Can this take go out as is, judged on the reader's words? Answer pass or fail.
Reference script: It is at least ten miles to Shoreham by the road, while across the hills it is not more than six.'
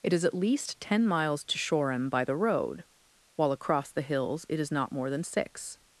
pass